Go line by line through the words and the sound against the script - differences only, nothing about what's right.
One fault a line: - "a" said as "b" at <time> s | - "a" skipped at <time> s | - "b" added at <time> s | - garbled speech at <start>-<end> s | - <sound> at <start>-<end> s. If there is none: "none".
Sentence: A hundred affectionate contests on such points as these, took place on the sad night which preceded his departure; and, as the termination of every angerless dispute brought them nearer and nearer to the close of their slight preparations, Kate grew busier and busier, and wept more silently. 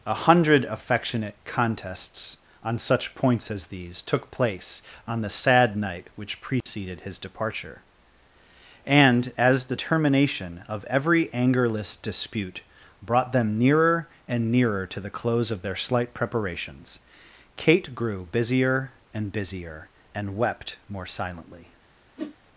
- dropout at 6.6-6.7 s
- whoosh at 22.2-22.4 s